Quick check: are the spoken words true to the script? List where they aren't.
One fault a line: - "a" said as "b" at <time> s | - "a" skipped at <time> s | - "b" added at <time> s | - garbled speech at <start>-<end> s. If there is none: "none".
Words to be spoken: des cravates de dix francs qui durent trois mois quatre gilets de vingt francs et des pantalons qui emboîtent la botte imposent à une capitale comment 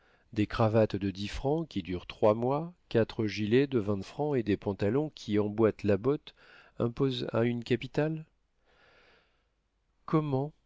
none